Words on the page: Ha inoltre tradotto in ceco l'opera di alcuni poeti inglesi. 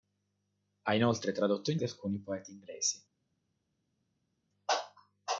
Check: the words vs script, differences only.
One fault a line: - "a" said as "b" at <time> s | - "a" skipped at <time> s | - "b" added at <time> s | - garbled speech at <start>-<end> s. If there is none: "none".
- "ceco l'opera" skipped at 1.8 s